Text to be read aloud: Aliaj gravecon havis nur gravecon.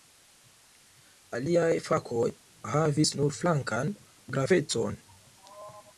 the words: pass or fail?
fail